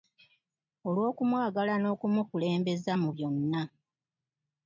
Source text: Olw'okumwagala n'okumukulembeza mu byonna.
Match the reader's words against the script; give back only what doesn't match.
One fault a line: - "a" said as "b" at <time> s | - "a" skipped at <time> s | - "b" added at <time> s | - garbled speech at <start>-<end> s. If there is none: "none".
none